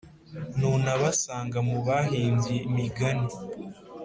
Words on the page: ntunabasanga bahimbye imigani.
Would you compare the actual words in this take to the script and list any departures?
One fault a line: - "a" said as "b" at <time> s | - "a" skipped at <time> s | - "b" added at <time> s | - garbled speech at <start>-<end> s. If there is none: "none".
- "mu" added at 1.7 s